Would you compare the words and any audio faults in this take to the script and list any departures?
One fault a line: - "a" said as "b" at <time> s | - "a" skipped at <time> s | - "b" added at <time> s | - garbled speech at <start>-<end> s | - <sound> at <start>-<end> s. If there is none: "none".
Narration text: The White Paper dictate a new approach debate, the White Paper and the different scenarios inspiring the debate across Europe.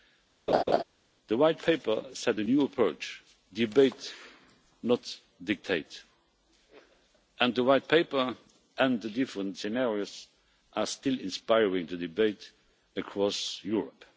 - laugh at 0.5-0.8 s
- "dictate" said as "set" at 2.1 s
- "not dictate and" added at 4.8 s
- "are still" added at 10.7 s